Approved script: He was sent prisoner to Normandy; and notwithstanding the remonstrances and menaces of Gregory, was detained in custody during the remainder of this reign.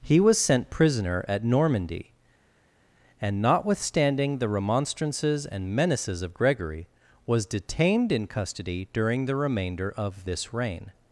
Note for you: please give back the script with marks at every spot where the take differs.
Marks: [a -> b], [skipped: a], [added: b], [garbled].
He was sent prisoner [to -> at] Normandy; and notwithstanding the remonstrances and menaces of Gregory, was detained in custody during the remainder of this reign.